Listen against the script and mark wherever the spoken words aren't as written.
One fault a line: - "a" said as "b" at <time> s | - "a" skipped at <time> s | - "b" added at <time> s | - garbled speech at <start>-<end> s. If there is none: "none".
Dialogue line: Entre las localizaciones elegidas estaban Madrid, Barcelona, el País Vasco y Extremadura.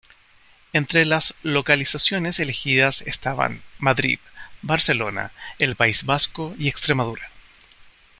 none